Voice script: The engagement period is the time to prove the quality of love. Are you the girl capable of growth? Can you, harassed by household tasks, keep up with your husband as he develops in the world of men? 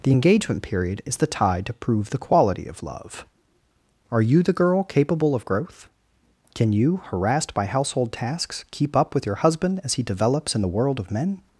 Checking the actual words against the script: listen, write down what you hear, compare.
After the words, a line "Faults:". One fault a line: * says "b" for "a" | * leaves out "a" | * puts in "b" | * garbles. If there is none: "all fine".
The engagement period is the tide to prove the quality of love. Are you the girl capable of growth? Can you, harassed by household tasks, keep up with your husband as he develops in the world of men?
Faults:
* says "tide" for "time"